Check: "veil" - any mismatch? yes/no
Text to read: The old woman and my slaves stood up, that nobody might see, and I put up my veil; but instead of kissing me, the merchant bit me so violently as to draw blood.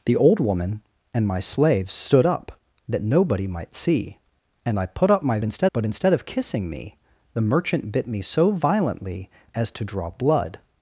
yes